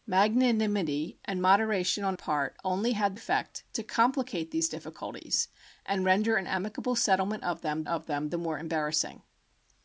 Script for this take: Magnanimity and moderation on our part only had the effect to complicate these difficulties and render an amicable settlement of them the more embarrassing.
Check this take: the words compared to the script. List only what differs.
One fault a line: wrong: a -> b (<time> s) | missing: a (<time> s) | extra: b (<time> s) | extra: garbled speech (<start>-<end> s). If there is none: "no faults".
missing: our (2.2 s)
missing: the (3.2 s)
extra: of them (7.9 s)